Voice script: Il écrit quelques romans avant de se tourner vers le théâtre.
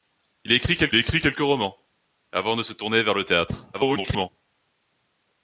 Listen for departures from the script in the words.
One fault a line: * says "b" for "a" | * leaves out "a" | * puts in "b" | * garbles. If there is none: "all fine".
* puts in "écrit quelques"
* garbles